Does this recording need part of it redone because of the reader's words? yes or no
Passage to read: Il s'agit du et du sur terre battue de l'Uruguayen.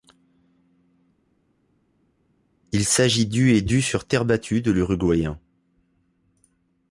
no